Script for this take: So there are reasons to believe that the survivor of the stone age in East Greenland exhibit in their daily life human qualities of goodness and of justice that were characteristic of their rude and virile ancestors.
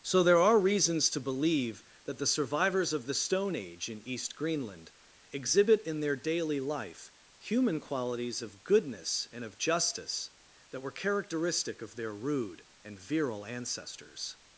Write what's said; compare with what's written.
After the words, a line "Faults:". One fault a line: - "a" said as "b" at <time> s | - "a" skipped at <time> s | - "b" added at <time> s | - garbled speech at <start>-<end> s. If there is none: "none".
So there are reasons to believe that the survivors of the stone age in East Greenland exhibit in their daily life human qualities of goodness and of justice that were characteristic of their rude and virile ancestors.
Faults:
- "survivor" said as "survivors" at 2.2 s